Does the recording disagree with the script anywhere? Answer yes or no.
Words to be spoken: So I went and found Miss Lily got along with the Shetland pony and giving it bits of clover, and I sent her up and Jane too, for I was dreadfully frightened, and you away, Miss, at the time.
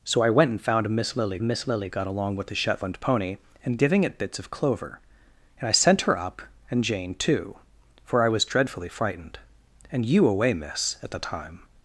yes